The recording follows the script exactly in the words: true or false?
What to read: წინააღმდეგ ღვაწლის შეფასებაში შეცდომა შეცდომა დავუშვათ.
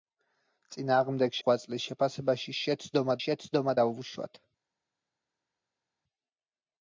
true